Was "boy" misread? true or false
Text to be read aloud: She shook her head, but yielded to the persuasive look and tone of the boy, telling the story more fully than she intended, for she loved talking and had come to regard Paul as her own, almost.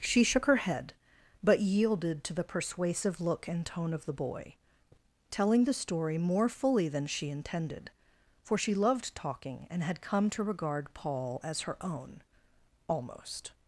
false